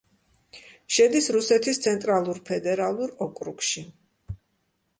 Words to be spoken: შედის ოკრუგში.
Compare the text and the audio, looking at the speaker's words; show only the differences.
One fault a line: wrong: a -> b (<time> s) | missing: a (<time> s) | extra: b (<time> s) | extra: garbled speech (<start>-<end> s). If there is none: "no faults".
extra: რუსეთის ცენტრალურ ფედერალურ (1.4 s)